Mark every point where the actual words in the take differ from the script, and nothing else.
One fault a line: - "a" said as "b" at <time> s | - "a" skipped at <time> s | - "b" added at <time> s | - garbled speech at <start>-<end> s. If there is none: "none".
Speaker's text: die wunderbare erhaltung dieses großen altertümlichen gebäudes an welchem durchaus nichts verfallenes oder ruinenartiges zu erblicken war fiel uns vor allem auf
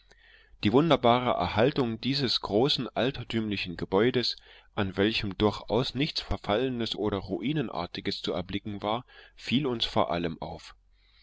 none